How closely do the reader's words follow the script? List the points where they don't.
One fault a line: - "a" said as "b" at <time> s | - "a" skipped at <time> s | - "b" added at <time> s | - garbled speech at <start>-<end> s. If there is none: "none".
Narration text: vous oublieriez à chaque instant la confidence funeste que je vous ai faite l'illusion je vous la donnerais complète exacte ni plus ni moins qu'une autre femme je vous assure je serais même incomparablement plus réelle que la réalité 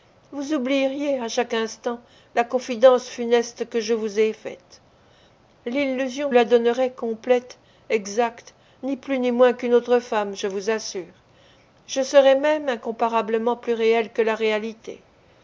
- "je vous" skipped at 6.3 s